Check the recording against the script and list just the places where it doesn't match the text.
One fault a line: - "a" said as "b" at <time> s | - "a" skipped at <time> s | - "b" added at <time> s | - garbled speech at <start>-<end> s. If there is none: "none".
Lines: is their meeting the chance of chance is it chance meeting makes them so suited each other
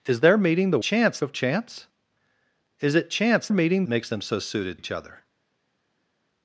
none